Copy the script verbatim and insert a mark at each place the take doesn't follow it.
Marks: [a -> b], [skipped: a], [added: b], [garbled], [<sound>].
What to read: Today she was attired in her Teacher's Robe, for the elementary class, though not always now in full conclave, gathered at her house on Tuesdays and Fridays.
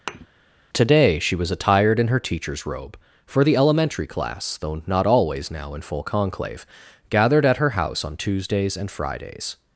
[thud] Today she was attired in her Teacher's Robe, for the elementary class, though not always now in full conclave, gathered at her house on Tuesdays and Fridays.